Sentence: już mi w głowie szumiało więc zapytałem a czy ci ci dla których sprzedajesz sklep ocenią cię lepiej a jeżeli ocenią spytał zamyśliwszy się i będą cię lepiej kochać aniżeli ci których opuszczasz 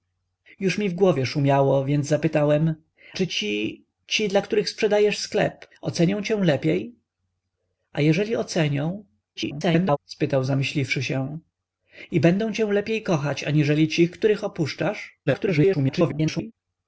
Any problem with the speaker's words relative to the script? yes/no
yes